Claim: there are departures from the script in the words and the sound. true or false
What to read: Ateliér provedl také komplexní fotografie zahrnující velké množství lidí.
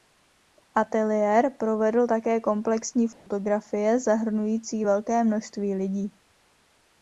true